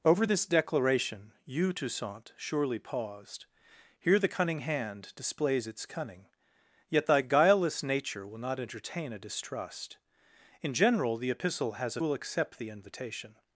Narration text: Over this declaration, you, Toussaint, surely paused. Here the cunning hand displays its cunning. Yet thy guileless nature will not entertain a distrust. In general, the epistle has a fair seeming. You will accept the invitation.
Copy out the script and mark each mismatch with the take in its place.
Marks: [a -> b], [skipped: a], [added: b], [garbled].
Over this declaration, you, Toussaint, surely paused. Here the cunning hand displays its cunning. Yet thy guileless nature will not entertain a distrust. In general, the epistle has a [skipped: fair seeming. You] will accept the invitation.